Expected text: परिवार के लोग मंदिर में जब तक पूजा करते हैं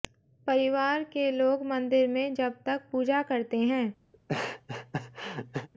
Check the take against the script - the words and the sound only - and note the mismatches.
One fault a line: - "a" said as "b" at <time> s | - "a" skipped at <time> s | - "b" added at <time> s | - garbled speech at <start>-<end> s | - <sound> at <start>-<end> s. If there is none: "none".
- laugh at 4.1-5.7 s